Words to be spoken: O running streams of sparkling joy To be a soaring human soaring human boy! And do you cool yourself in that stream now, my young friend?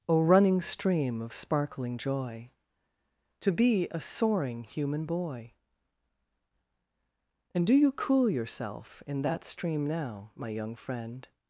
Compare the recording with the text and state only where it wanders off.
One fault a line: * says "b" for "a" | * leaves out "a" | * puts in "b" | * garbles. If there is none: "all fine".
* says "stream" for "streams"
* leaves out "soaring human"